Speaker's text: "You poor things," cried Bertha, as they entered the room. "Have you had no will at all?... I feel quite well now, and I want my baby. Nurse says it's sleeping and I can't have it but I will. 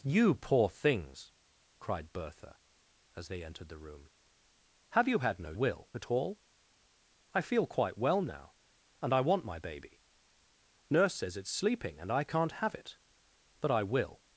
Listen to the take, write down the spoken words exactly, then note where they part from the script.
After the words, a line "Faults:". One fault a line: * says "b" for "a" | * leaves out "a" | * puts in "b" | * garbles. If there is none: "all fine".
"You poor things," cried Bertha, as they entered the room. "Have you had no will at all?... I feel quite well now, and I want my baby. Nurse says it's sleeping and I can't have it but I will.
Faults:
all fine